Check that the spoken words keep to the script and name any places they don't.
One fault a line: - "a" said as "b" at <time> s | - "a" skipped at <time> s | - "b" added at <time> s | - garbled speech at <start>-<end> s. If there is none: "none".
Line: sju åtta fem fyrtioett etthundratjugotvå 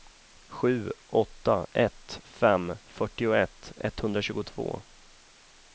- "ett" added at 1.7 s